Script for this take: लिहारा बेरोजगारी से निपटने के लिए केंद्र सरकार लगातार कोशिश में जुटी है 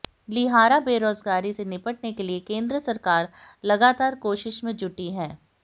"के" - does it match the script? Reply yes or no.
yes